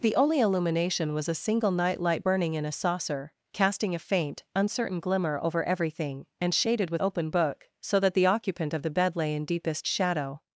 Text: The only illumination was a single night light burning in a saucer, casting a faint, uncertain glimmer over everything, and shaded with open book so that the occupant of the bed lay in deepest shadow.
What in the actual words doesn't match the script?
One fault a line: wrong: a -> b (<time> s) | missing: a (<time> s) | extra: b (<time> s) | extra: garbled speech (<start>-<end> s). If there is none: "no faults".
no faults